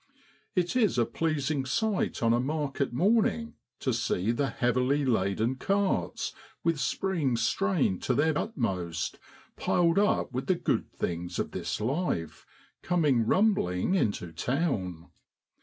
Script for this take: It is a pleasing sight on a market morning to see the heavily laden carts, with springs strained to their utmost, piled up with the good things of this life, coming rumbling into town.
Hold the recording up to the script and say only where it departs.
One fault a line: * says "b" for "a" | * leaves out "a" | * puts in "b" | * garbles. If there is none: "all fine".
all fine